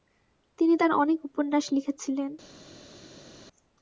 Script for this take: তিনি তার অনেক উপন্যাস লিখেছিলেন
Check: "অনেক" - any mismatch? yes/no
no